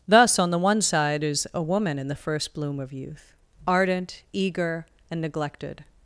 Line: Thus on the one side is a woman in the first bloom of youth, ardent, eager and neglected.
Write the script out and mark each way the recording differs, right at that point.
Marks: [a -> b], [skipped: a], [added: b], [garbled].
Thus on the one side is a woman in the first bloom of youth, ardent, eager and neglected.